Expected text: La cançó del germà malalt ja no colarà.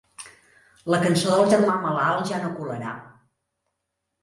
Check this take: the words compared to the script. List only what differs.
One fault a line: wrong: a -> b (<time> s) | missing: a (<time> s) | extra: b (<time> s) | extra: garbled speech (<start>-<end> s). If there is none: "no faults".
no faults